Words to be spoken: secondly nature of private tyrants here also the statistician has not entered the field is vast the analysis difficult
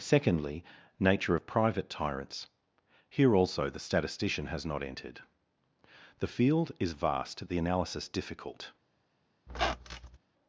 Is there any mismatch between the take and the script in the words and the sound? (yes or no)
yes